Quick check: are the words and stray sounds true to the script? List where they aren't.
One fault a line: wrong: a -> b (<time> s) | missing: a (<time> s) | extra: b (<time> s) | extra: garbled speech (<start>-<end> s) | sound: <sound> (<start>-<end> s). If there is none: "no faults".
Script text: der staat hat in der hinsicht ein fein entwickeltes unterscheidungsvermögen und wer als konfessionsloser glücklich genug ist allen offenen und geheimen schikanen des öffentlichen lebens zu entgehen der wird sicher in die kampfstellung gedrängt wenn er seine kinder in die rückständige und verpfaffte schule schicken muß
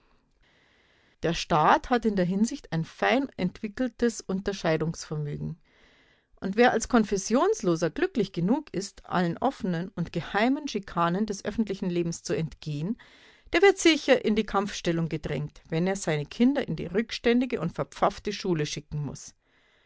no faults